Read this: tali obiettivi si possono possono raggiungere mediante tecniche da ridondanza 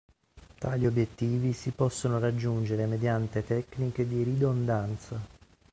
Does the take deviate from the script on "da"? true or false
true